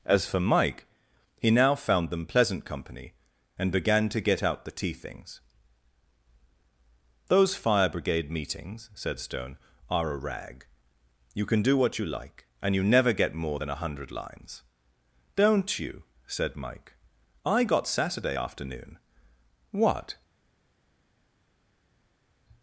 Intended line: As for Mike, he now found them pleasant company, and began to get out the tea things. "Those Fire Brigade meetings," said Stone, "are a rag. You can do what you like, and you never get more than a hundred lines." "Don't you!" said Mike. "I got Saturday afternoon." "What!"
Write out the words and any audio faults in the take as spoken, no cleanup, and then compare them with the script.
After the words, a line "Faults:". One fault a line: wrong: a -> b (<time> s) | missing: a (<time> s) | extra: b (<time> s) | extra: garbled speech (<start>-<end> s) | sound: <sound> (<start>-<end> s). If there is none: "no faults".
As for Mike, he now found them pleasant company, and began to get out the tea things. "Those Fire Brigade meetings," said Stone, "are a rag. You can do what you like, and you never get more than a hundred lines." "Don't you!" said Mike. "I got Saturday afternoon." "What!"
Faults:
no faults